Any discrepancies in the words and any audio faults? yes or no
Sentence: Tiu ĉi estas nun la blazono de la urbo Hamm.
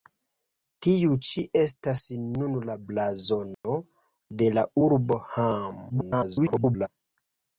yes